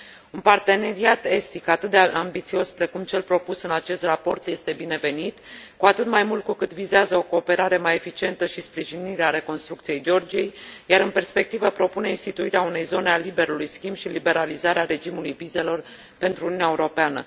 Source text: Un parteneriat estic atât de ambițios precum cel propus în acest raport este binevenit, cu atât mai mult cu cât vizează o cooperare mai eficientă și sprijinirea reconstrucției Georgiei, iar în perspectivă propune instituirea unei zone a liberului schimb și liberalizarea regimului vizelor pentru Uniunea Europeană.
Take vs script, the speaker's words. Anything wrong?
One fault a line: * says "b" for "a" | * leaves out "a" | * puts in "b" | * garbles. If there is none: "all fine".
all fine